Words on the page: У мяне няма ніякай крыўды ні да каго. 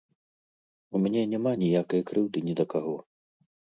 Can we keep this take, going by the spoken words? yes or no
yes